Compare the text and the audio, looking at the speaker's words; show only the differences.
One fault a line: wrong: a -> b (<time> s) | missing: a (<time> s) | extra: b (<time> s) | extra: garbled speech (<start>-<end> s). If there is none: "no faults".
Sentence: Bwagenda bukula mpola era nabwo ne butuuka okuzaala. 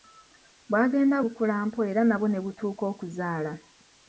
no faults